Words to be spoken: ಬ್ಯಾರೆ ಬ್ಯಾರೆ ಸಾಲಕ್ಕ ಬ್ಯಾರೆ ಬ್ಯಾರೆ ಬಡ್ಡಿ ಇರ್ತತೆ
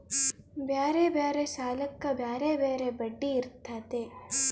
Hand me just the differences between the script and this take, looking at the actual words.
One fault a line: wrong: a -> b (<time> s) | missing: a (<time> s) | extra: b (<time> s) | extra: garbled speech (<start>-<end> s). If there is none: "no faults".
no faults